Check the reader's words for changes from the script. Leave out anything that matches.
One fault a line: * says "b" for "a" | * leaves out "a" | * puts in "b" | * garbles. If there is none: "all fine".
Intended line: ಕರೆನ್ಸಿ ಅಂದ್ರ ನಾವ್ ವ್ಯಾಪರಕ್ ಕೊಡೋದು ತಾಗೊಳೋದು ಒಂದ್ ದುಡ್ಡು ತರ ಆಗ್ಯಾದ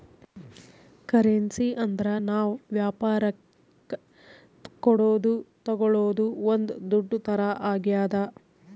all fine